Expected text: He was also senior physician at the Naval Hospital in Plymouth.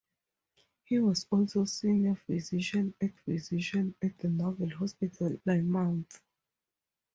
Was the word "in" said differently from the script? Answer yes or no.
yes